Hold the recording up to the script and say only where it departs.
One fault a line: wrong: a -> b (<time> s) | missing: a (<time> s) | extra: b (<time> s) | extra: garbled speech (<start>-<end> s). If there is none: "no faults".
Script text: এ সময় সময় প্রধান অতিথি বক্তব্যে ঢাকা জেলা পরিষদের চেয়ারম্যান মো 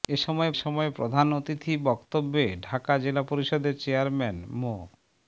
no faults